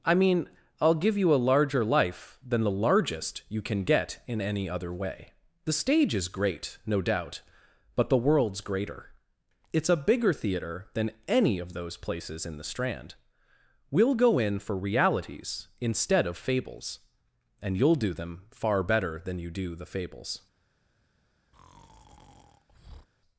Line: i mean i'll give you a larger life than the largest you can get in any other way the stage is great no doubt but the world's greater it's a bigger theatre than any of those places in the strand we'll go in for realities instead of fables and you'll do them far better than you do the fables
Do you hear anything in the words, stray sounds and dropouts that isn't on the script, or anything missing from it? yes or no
yes